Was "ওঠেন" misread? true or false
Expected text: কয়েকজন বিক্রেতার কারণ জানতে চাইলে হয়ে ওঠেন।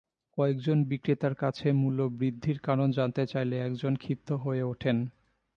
false